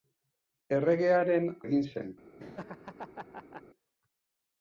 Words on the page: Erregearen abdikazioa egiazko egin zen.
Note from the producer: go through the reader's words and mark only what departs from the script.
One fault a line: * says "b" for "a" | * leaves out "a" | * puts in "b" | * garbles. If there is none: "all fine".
* leaves out "abdikazioa egiazko"